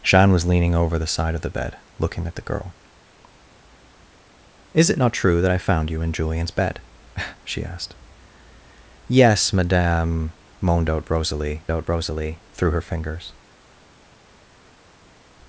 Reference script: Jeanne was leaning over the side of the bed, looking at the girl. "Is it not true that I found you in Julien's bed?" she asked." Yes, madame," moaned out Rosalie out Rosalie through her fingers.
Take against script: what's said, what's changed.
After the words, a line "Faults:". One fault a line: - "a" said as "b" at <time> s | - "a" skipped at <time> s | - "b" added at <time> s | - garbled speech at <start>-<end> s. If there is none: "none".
Jeanne was leaning over the side of the bed, looking at the girl. "Is it not true that I found you in Julien's bed?" she asked." Yes, madame," moaned out Rosalie out Rosalie through her fingers.
Faults:
none